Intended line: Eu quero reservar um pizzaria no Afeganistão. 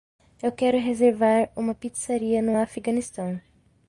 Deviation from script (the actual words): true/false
true